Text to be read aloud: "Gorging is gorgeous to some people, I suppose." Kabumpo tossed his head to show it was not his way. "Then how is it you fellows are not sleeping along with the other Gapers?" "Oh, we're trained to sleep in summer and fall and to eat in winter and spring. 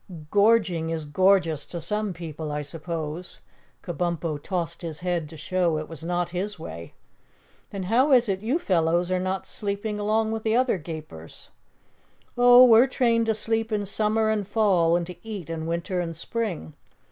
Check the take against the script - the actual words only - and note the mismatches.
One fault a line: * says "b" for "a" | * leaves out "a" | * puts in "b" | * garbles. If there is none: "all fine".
all fine